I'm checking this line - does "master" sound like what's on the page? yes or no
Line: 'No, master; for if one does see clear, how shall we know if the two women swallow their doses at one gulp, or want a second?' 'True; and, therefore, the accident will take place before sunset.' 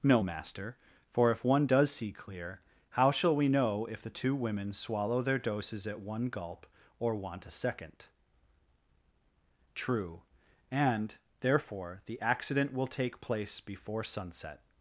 yes